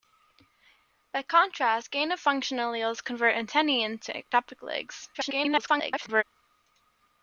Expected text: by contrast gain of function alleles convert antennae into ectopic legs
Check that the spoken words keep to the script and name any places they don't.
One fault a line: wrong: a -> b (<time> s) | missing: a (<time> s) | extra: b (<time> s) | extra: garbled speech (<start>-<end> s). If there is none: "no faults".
extra: garbled speech (5.1-6.2 s)